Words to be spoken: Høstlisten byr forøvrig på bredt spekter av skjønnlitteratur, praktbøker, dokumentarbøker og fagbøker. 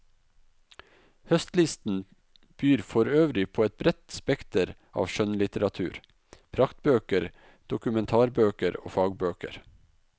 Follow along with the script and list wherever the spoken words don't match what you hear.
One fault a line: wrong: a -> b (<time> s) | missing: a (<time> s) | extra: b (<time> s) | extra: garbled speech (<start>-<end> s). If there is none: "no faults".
extra: et (3.7 s)